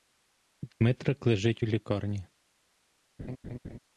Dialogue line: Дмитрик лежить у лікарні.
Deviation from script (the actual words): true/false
false